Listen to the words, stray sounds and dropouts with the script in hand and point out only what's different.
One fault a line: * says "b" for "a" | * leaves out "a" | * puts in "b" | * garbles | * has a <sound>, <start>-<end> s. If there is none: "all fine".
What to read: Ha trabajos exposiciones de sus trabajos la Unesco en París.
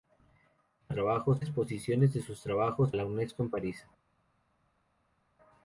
all fine